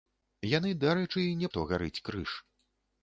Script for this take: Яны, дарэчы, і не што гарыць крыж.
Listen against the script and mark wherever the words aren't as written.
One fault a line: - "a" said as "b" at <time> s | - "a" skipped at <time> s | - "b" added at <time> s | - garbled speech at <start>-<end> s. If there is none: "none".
none